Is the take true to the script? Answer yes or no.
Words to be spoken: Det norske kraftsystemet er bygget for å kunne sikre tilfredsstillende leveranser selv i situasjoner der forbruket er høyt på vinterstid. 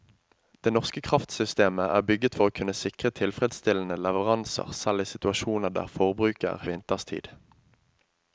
no